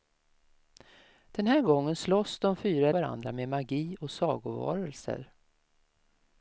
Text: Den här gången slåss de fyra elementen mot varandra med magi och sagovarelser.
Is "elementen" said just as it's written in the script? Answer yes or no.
no